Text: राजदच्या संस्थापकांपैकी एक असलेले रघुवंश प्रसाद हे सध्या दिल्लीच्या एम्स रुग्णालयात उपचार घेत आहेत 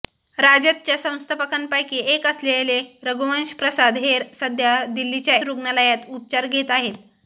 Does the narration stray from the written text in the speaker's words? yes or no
yes